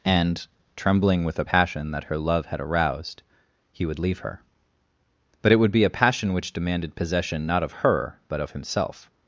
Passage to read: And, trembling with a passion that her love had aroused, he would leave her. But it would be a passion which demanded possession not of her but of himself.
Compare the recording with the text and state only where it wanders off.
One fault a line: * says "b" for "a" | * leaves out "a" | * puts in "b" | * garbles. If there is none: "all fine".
all fine